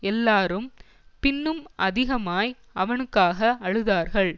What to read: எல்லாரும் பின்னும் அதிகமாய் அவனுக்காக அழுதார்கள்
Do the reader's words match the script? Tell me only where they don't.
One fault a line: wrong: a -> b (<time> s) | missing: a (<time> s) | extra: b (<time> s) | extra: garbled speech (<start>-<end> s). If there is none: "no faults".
no faults